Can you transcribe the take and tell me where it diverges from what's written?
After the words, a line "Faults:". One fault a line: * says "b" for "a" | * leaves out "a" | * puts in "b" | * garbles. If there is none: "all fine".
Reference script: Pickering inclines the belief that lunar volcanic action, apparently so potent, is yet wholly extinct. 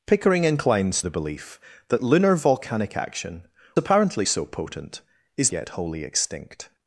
Pickering inclines the belief that lunar volcanic action, apparently so potent, is yet wholly extinct.
Faults:
all fine